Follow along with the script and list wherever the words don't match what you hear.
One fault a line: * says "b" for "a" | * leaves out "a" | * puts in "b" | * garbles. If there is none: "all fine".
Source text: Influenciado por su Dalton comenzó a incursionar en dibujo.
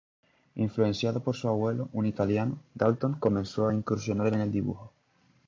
* puts in "abuelo un italiano"
* puts in "el"